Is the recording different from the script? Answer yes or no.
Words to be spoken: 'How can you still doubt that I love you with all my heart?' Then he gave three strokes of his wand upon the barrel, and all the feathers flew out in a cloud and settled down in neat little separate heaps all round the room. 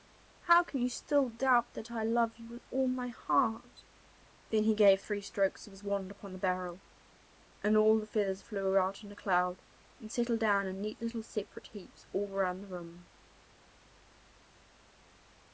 no